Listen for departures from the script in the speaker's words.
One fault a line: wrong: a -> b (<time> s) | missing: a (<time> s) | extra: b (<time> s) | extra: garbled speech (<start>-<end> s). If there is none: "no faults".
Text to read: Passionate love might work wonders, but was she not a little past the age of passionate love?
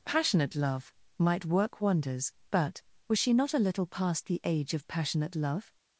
no faults